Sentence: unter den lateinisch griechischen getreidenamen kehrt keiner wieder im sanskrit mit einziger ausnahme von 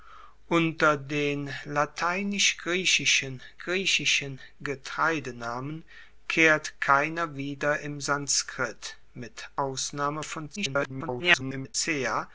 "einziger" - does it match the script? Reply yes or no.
no